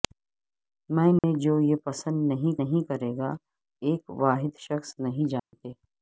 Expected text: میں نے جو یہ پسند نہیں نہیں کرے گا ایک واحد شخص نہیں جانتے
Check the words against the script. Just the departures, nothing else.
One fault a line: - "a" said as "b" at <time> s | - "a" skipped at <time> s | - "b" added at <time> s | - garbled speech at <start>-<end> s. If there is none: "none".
none